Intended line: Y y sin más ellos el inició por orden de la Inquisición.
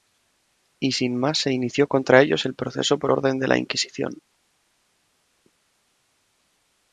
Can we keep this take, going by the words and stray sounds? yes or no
no